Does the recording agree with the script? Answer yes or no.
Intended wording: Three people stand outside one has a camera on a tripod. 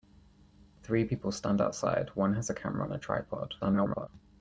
no